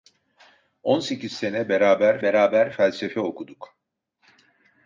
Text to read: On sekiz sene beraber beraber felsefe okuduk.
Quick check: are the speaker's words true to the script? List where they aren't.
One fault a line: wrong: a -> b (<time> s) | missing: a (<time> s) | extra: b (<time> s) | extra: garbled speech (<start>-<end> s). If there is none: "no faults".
no faults